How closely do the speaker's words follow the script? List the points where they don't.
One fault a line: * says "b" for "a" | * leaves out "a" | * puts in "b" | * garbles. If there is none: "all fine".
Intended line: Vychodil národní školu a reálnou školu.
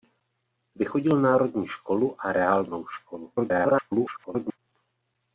* garbles